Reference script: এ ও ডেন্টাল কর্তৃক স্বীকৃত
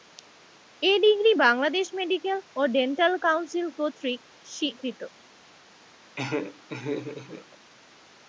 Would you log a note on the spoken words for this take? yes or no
yes